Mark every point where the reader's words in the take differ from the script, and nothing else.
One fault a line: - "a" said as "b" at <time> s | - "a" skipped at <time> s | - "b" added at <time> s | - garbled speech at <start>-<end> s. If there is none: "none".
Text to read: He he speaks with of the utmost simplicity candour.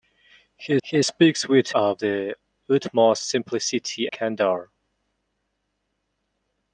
none